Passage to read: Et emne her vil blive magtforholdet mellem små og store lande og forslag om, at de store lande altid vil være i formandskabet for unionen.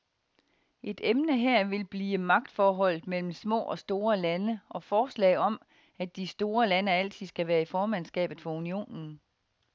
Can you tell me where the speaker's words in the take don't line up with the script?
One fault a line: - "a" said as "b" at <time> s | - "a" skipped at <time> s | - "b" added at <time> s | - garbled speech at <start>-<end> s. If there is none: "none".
- "vil" said as "skal" at 7.3 s